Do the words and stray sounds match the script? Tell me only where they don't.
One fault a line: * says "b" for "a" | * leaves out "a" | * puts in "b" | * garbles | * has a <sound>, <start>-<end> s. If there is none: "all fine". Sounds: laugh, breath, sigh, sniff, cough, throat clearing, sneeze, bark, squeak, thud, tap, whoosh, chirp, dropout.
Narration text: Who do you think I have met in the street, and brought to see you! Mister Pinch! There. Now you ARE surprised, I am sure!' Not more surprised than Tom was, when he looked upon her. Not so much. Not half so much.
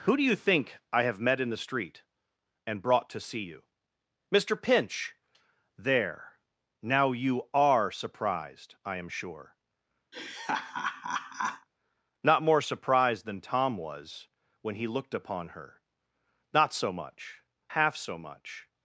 * has a laugh, 10.1-11.7 s
* leaves out "Not"